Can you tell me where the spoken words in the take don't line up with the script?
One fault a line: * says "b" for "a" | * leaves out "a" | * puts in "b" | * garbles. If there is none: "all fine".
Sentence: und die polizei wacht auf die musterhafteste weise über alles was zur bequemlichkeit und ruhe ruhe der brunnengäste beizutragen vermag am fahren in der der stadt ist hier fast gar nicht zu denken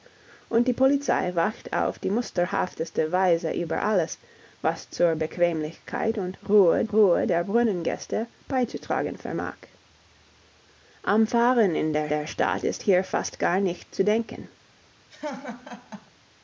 all fine